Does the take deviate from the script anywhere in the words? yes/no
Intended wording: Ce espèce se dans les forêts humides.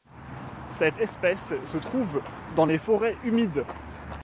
yes